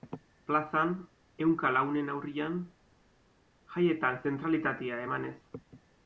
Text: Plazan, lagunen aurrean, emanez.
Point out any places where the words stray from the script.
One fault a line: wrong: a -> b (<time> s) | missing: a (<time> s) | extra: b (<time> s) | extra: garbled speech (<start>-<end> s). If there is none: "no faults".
extra: ehunka (1.4 s)
extra: jaietan zentralitatea (3.8 s)